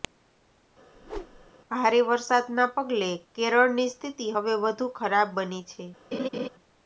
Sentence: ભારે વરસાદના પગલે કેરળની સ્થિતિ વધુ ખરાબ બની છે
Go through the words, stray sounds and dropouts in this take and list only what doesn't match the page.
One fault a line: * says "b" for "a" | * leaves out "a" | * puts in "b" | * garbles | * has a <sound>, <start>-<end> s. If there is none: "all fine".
* has a whoosh, 0.9-1.5 s
* puts in "હવે"
* has a laugh, 6.1-6.5 s